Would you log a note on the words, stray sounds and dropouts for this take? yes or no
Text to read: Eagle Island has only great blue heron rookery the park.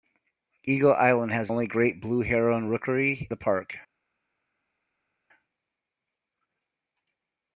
no